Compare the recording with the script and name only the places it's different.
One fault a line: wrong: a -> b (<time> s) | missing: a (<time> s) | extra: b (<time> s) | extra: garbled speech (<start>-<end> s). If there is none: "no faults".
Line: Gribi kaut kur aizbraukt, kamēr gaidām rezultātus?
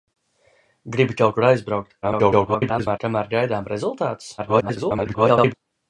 extra: garbled speech (2.0-3.0 s)
extra: garbled speech (4.4-5.5 s)